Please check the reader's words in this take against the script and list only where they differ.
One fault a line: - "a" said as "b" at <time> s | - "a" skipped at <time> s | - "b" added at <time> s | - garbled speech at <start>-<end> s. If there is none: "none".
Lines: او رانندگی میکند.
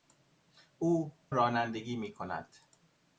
none